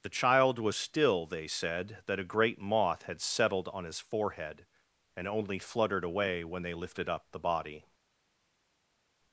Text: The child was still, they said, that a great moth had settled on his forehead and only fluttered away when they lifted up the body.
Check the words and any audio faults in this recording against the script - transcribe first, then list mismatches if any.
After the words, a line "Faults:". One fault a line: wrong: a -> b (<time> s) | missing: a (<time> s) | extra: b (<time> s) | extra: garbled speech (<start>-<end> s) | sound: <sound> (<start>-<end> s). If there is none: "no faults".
The child was still, they said, that a great moth had settled on his forehead and only fluttered away when they lifted up the body.
Faults:
no faults